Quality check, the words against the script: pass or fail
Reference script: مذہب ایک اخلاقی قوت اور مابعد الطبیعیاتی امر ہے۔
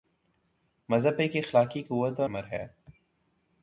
fail